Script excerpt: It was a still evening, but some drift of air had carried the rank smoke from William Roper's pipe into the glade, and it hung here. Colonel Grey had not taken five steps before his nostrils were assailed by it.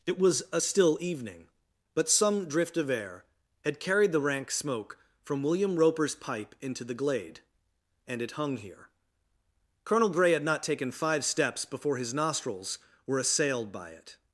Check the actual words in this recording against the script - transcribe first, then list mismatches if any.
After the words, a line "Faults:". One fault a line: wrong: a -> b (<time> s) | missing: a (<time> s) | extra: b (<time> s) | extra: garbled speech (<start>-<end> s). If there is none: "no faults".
It was a still evening, but some drift of air had carried the rank smoke from William Roper's pipe into the glade, and it hung here. Colonel Grey had not taken five steps before his nostrils were assailed by it.
Faults:
no faults